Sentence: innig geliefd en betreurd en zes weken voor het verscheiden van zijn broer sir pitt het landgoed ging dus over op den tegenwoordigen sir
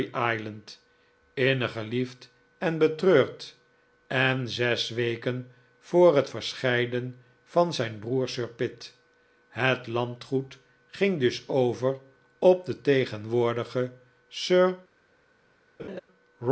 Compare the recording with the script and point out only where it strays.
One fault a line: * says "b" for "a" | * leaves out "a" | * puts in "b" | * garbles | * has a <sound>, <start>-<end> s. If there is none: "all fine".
* has a laugh, 15.8-16.0 s